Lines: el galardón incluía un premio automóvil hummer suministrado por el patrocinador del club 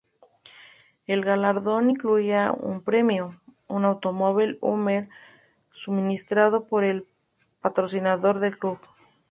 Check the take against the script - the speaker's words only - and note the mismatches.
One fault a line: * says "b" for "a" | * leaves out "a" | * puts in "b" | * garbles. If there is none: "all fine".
* puts in "un"